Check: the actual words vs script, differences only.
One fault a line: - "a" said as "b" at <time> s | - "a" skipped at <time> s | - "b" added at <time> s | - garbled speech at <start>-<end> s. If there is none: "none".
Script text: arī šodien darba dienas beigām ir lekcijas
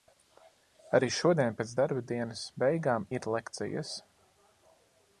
- "pēc" added at 1.6 s